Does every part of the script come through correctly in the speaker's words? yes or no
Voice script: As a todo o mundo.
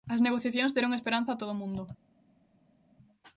no